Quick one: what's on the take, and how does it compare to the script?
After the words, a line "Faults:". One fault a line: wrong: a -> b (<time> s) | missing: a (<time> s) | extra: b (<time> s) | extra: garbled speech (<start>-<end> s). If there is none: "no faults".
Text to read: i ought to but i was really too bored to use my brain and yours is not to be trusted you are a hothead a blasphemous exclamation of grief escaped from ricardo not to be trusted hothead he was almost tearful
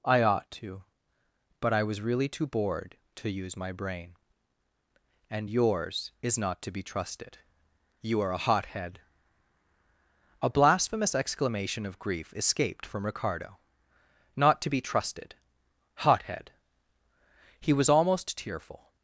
i ought to but i was really too bored to use my brain and yours is not to be trusted you are a hothead a blasphemous exclamation of grief escaped from ricardo not to be trusted hothead he was almost tearful
Faults:
no faults